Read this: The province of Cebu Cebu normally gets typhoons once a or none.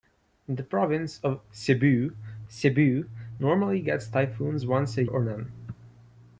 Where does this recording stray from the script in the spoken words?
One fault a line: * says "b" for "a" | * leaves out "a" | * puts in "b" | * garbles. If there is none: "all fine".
all fine